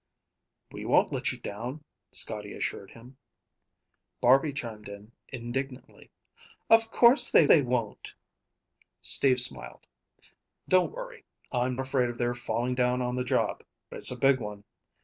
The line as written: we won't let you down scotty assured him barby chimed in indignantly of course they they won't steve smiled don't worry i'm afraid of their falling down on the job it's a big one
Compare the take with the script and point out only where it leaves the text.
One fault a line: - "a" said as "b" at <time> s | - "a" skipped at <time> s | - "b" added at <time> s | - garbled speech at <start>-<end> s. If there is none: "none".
none